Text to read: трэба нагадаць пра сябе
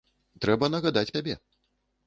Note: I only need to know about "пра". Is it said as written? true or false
false